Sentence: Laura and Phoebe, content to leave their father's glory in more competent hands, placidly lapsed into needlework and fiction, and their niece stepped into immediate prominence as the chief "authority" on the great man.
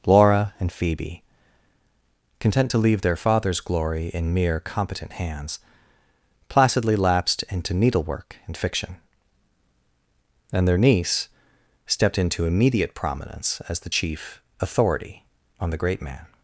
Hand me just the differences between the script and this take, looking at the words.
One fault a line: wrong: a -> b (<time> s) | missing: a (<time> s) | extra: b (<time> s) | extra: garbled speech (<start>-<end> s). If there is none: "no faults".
wrong: more -> mere (4.3 s)